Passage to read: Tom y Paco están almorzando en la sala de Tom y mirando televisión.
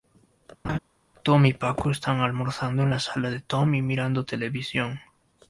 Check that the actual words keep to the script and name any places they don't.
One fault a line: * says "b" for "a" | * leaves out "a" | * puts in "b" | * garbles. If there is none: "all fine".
all fine